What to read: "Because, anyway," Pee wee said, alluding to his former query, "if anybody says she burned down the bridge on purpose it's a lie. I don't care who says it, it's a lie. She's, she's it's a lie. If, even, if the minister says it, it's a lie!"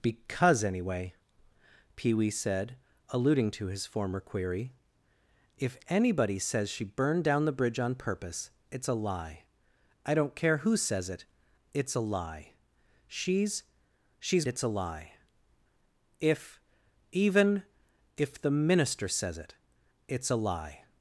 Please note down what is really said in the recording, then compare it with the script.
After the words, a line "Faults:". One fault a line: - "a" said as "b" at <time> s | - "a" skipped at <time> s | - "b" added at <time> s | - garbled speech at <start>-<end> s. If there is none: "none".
"Because, anyway," Pee wee said, alluding to his former query, "if anybody says she burned down the bridge on purpose it's a lie. I don't care who says it, it's a lie. She's, she's it's a lie. If, even, if the minister says it, it's a lie!"
Faults:
none